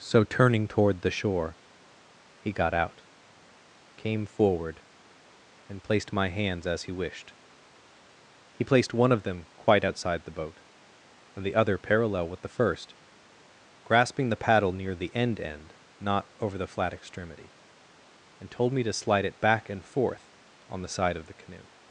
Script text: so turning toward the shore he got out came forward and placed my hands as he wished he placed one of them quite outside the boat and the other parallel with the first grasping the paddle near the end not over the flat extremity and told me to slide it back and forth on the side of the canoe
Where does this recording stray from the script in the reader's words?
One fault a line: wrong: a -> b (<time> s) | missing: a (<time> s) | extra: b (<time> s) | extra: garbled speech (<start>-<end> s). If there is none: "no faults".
extra: end (15.4 s)